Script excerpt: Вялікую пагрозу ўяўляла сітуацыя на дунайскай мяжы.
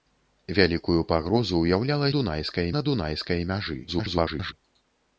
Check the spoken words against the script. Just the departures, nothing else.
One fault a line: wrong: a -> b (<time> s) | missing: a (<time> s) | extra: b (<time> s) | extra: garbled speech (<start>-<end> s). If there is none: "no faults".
wrong: сітуацыя -> дунайскай (2.2 s)
extra: garbled speech (3.9-4.5 s)